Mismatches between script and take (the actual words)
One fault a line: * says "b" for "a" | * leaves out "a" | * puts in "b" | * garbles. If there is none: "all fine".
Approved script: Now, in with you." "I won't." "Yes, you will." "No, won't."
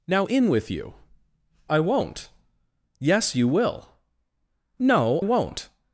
all fine